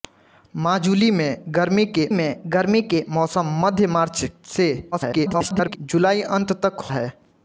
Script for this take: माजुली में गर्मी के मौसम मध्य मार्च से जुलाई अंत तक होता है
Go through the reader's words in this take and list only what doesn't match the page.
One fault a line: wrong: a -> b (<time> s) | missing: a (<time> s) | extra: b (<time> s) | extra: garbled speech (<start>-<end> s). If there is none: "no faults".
extra: में गर्मी के (2.1 s)
extra: garbled speech (4.9-5.8 s)
missing: होता (6.9 s)